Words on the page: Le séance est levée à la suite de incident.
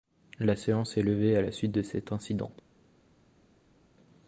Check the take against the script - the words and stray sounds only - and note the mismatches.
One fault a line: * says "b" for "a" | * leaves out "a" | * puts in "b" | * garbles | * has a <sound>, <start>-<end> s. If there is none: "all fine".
* says "La" for "Le"
* puts in "cet"